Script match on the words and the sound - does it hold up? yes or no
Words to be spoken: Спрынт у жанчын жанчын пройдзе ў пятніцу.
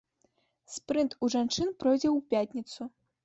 no